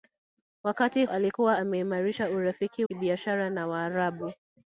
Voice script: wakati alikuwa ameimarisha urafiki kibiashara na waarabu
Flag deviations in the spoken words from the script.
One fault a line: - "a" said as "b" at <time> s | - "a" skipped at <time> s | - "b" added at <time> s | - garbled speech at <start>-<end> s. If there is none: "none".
none